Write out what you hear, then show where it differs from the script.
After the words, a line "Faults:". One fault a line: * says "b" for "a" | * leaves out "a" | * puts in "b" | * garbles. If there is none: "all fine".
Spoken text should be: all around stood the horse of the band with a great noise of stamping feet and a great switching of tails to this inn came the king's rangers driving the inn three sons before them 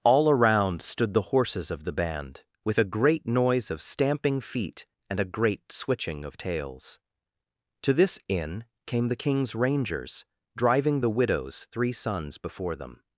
all around stood the horses of the band with a great noise of stamping feet and a great switching of tails to this inn came the king's rangers driving the widow's three sons before them
Faults:
* says "horses" for "horse"
* says "widow's" for "inn"